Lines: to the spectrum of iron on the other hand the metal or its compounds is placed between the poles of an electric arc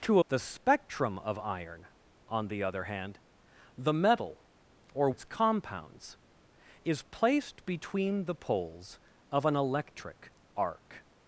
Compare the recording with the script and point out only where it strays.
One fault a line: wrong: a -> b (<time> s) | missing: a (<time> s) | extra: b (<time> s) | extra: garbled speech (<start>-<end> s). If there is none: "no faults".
no faults